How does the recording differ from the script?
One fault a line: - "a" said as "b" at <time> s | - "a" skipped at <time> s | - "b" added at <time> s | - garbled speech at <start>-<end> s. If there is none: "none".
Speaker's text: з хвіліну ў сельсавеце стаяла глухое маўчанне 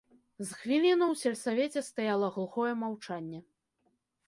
none